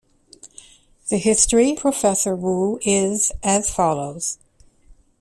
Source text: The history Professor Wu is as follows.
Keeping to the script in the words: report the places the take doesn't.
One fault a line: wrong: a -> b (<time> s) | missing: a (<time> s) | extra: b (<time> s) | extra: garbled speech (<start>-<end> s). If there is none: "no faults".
no faults